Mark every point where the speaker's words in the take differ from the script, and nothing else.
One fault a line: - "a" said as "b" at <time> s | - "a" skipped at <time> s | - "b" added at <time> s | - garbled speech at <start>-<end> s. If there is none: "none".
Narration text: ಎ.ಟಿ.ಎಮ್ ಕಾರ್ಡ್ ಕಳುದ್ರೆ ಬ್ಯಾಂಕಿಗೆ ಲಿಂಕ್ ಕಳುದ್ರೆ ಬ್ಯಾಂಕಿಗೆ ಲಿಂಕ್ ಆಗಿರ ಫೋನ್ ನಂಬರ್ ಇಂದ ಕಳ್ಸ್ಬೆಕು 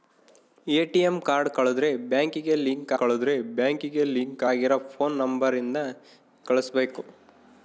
none